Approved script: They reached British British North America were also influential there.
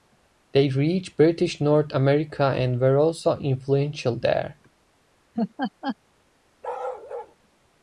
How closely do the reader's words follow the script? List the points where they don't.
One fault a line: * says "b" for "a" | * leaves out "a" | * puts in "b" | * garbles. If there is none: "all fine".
* leaves out "British"
* puts in "and"